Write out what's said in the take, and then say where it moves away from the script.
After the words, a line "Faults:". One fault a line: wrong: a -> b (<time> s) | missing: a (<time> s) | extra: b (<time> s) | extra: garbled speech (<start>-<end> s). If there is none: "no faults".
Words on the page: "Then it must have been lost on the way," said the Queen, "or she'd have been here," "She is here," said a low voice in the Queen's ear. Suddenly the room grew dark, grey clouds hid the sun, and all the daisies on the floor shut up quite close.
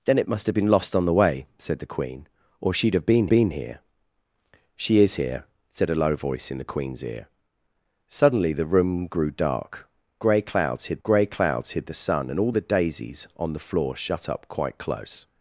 "Then it must have been lost on the way," said the Queen, "or she'd have been been here," "She is here," said a low voice in the Queen's ear. Suddenly the room grew dark, grey clouds hid grey clouds hid the sun, and all the daisies on the floor shut up quite close.
Faults:
extra: been (3.3 s)
extra: grey clouds hid (11.0 s)